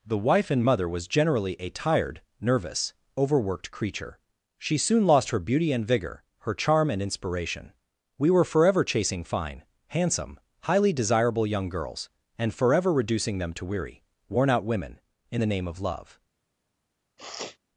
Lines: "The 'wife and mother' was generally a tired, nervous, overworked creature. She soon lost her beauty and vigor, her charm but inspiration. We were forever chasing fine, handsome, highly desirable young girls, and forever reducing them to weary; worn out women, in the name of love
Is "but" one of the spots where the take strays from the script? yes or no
yes